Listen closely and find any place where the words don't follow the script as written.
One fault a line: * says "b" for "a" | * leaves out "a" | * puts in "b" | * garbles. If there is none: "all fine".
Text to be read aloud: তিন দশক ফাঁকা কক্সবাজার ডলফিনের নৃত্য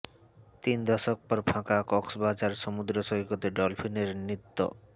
* puts in "পর"
* puts in "সমুদ্র সৈকতে"